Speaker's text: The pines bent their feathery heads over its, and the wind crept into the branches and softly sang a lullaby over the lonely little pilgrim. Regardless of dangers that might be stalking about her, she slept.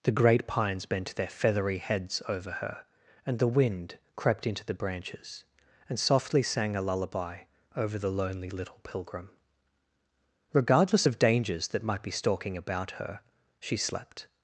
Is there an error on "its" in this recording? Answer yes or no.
yes